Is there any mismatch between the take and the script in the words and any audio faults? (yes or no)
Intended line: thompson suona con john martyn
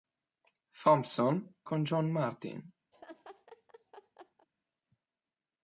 yes